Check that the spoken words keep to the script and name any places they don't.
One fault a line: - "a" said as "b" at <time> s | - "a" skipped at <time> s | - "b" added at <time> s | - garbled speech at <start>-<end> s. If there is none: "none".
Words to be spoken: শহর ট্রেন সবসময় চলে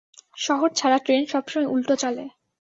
- "ছাড়া" added at 0.8 s
- "উল্টো" added at 1.7 s